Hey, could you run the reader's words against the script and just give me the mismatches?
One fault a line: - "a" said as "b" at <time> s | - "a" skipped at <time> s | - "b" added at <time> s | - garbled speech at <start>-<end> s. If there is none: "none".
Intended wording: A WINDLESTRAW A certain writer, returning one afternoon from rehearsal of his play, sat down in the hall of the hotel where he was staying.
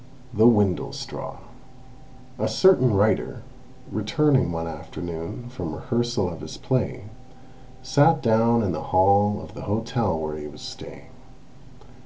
- "A" said as "THE" at 0.3 s